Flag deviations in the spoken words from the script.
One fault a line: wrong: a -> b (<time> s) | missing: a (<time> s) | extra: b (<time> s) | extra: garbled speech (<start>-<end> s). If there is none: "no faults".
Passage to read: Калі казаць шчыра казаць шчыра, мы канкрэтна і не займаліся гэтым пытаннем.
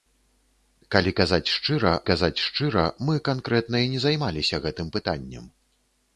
no faults